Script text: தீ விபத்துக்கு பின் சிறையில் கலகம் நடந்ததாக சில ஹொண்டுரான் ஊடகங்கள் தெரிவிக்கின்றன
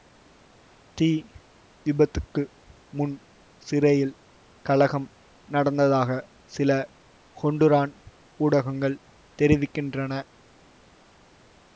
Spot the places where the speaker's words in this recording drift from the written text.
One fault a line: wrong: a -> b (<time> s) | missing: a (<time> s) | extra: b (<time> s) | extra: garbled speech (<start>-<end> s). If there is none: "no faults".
wrong: பின் -> முன் (2.9 s)